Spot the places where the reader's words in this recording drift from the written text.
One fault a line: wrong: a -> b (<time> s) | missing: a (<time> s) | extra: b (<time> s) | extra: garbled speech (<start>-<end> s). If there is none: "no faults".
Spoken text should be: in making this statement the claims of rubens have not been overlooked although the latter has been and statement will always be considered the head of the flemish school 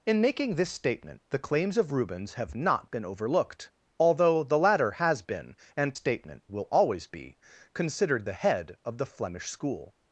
no faults